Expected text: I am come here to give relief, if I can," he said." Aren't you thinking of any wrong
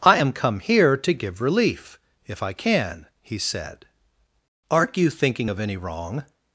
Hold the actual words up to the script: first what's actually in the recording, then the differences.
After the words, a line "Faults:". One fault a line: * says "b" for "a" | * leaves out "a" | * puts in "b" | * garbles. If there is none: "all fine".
I am come here to give relief, if I can," he said." Aren't you thinking of any wrong
Faults:
all fine